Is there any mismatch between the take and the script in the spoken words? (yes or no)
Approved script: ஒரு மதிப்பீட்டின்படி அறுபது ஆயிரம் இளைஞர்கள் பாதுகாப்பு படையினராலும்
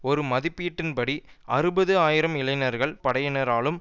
yes